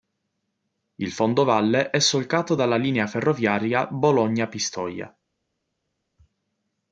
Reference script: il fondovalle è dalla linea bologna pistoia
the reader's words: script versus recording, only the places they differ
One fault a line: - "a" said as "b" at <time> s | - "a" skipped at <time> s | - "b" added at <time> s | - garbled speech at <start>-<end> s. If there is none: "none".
- "solcato" added at 2.0 s
- "ferroviaria" added at 3.1 s